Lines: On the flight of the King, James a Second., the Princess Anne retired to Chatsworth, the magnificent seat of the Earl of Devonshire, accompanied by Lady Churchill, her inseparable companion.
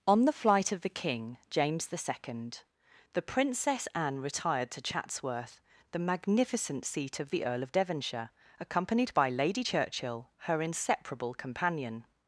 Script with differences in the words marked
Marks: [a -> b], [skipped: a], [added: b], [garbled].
On the flight of the King, James [a -> the] Second., the Princess Anne retired to Chatsworth, the magnificent seat of the Earl of Devonshire, accompanied by Lady Churchill, her inseparable companion.